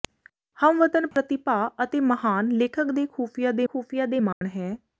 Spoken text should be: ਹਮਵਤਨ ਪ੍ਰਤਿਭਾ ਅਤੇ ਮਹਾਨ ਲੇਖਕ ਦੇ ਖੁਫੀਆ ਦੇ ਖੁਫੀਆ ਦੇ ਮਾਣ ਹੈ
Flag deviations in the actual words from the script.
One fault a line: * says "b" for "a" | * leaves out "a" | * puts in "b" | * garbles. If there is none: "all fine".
all fine